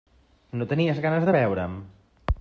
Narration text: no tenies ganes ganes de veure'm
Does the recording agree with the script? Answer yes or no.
no